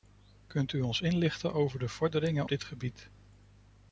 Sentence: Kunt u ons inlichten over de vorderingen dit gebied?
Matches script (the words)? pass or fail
pass